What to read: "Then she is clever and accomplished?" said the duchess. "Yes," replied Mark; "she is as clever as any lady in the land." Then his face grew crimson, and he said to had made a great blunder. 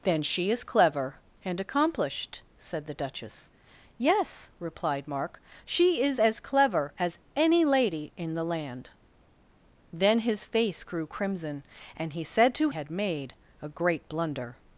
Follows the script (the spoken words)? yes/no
yes